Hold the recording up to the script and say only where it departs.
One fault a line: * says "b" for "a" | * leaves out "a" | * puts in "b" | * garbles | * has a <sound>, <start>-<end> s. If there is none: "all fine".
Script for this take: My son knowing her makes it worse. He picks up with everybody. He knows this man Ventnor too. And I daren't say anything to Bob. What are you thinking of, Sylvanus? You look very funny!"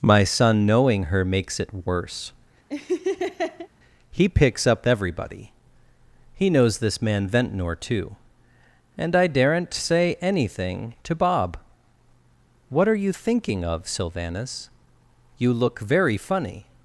* has a laugh, 2.7-3.7 s
* leaves out "with"